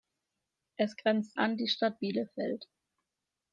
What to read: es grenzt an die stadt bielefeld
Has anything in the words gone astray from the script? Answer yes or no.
no